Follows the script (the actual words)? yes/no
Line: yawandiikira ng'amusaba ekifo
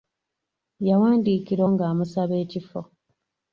yes